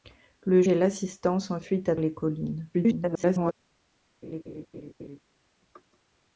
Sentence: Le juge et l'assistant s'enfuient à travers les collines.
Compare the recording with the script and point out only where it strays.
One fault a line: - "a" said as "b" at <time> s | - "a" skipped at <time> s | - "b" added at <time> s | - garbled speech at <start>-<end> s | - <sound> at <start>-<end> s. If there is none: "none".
- "juge" skipped at 0.6 s
- "travers" skipped at 2.0 s
- garbled speech at 2.7-3.5 s
- laugh at 4.2-5.2 s